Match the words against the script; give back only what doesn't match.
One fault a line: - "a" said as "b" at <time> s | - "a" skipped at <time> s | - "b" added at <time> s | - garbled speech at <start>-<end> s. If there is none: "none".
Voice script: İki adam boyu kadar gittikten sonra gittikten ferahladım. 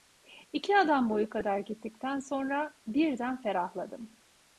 - "gittikten" said as "birden" at 2.9 s